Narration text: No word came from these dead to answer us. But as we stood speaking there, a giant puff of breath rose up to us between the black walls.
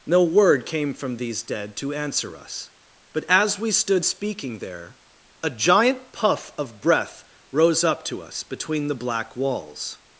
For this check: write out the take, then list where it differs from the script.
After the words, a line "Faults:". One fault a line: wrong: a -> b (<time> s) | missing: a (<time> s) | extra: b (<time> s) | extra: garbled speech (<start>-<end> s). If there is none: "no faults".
No word came from these dead to answer us. But as we stood speaking there, a giant puff of breath rose up to us between the black walls.
Faults:
no faults